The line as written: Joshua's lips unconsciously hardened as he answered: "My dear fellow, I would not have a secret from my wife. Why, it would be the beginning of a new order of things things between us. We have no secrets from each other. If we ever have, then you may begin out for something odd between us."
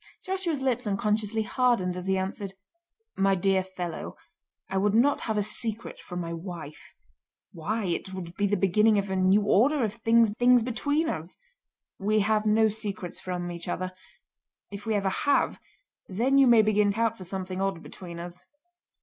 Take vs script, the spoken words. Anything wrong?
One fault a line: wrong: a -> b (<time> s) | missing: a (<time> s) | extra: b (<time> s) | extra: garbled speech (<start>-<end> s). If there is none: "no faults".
no faults